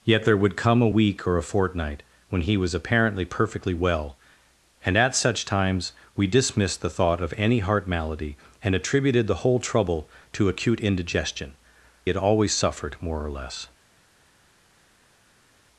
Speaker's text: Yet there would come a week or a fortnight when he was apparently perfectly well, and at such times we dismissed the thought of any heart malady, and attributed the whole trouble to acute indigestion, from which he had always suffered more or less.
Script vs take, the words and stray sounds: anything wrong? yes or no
yes